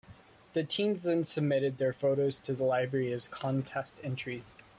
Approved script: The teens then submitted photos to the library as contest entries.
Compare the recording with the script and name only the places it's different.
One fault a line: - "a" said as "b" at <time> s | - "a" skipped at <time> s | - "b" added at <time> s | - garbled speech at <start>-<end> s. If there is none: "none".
- "their" added at 1.8 s